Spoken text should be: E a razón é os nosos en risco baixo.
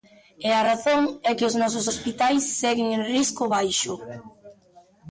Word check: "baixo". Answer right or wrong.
right